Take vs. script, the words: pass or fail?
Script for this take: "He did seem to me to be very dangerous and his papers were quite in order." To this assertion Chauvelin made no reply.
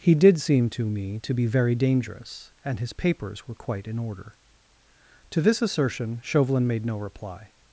pass